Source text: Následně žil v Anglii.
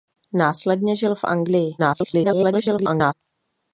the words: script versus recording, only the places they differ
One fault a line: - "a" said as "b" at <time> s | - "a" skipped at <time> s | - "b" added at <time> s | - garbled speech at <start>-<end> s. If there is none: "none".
- garbled speech at 1.8-3.1 s